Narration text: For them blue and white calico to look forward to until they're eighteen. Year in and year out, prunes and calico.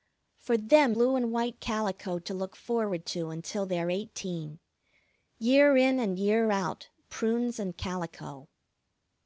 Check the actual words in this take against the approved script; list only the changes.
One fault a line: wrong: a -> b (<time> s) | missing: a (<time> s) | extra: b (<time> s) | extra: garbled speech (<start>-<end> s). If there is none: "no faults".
no faults